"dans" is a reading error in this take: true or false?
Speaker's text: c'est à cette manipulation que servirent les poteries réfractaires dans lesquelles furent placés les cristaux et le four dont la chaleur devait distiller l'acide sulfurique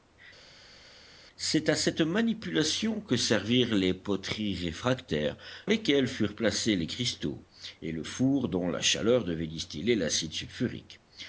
true